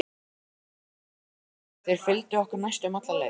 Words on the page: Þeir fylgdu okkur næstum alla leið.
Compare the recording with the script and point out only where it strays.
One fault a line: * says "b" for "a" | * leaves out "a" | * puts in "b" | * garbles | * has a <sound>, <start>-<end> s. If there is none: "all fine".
all fine